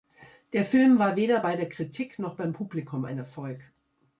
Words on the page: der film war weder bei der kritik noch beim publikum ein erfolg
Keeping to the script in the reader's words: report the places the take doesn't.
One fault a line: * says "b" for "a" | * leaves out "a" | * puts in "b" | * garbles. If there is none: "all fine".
all fine